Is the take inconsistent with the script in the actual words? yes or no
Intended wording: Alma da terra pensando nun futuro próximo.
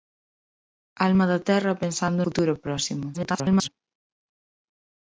yes